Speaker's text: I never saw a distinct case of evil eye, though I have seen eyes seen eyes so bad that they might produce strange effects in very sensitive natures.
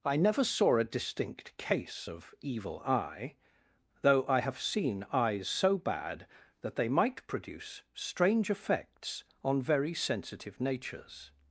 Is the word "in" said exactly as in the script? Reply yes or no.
no